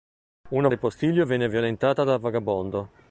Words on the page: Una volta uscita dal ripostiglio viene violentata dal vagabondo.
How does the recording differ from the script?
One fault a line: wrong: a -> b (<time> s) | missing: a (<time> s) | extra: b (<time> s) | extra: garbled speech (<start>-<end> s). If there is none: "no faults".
missing: volta uscita dal (0.7 s)